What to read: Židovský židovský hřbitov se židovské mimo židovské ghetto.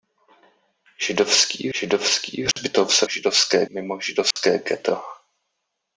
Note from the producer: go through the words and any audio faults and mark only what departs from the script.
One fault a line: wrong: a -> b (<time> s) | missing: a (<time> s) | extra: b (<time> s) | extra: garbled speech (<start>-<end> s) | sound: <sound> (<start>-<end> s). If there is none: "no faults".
sound: dropout (2.5-2.6 s)
sound: dropout (4.3-4.4 s)